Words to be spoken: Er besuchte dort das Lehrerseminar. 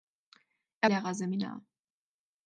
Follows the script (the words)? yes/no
no